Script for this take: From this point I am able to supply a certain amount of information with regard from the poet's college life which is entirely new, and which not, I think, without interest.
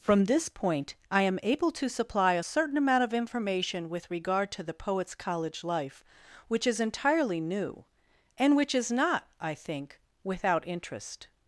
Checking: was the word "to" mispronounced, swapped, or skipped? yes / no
no